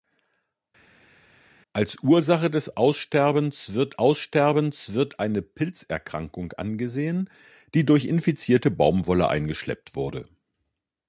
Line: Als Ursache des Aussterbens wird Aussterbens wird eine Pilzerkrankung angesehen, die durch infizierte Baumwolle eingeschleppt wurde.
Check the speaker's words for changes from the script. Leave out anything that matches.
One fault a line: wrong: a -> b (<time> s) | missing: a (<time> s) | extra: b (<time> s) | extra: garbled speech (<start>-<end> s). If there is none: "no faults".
no faults